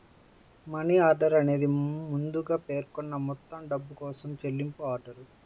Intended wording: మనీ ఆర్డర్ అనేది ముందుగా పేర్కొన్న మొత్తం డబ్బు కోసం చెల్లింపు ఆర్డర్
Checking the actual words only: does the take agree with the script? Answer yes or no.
yes